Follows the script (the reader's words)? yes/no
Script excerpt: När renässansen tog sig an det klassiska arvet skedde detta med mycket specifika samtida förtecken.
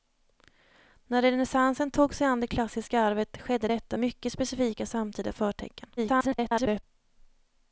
no